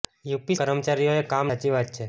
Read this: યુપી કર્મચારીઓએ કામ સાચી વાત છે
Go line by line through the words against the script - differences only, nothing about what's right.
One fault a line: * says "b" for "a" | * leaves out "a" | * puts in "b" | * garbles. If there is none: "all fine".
all fine